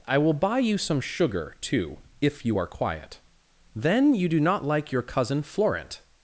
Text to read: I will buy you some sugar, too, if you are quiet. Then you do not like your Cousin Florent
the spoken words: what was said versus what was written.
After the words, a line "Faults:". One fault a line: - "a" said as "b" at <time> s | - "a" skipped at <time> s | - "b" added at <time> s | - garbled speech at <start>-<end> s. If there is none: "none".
I will buy you some sugar, too, if you are quiet. Then you do not like your Cousin Florent
Faults:
none